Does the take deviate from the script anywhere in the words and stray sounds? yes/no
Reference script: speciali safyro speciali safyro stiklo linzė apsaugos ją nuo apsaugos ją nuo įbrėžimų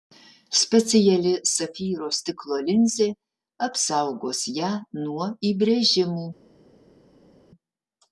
yes